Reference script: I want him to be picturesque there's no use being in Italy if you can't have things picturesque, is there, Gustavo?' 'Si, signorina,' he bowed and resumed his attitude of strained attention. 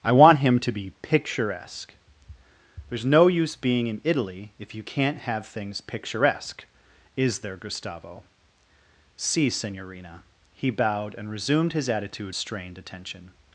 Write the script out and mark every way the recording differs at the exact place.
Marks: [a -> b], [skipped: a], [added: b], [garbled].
I want him to be picturesque there's no use being in Italy if you can't have things picturesque, is there, Gustavo?' 'Si, signorina,' he bowed and resumed his attitude [skipped: of] strained attention.